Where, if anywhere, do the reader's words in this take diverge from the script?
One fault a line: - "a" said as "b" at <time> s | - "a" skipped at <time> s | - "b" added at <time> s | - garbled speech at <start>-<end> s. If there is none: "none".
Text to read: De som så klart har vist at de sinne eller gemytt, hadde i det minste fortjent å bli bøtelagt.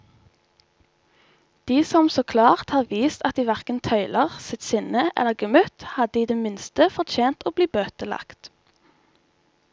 - "hverken tøyler sitt" added at 3.5 s